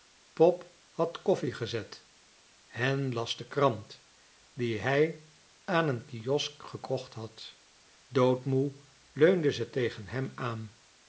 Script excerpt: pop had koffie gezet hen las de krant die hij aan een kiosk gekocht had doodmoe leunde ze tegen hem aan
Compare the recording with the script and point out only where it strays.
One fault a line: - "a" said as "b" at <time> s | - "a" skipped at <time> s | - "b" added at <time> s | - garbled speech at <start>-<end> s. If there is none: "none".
none